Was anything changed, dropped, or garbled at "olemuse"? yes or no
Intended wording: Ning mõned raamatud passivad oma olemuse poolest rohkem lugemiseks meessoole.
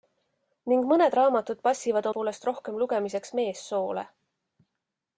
yes